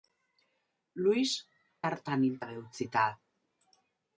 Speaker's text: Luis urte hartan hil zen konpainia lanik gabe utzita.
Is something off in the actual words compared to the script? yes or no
yes